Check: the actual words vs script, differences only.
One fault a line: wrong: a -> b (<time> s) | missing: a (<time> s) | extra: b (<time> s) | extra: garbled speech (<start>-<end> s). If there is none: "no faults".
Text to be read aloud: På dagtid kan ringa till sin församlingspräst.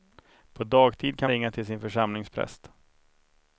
no faults